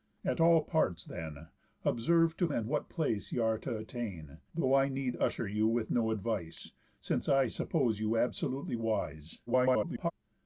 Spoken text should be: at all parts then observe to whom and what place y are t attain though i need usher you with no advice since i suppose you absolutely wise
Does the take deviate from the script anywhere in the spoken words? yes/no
yes